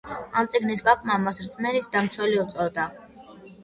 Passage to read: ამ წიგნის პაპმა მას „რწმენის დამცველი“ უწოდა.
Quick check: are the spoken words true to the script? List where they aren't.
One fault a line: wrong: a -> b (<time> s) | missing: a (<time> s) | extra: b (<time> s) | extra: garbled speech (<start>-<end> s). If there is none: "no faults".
no faults